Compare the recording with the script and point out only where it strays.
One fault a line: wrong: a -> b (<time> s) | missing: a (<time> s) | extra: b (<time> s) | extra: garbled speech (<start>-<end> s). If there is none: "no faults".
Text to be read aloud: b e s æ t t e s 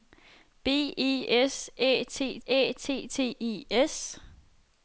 extra: æ t (2.5 s)